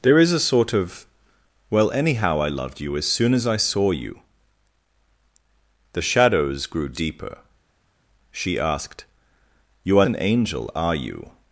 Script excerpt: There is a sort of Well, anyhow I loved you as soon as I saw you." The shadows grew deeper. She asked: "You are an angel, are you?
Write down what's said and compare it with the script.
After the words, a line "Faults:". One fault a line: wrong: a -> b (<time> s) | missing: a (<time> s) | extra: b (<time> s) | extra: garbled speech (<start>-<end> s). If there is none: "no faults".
There is a sort of Well, anyhow I loved you as soon as I saw you." The shadows grew deeper. She asked: "You are an angel, are you?
Faults:
no faults